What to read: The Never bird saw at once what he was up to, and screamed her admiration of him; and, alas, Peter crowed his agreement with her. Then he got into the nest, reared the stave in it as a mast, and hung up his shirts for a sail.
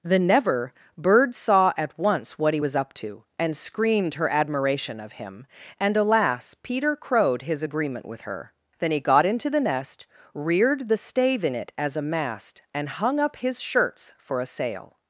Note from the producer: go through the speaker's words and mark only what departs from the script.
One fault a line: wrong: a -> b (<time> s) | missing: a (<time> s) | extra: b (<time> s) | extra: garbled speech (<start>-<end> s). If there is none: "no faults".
no faults